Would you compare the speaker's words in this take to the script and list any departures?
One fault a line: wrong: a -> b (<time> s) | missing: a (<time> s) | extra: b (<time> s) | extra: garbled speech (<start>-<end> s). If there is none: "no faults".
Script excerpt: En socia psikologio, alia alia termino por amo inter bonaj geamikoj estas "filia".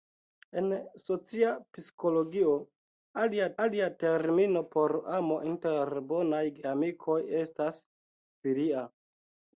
no faults